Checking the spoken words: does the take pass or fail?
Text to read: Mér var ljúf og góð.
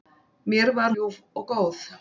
pass